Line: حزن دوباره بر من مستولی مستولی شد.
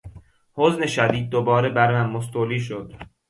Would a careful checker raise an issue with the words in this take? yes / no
yes